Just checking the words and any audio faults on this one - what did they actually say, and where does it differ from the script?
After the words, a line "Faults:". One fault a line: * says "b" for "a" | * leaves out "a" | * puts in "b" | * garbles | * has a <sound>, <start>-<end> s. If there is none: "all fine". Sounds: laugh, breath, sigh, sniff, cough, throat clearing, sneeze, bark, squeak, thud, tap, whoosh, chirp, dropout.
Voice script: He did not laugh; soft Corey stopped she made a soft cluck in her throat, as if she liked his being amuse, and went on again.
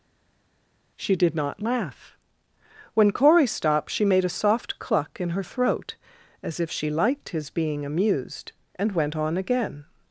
She did not laugh; when Corey stopped she made a soft cluck in her throat, as if she liked his being amused, and went on again.
Faults:
* says "She" for "He"
* says "when" for "soft"
* says "amused" for "amuse"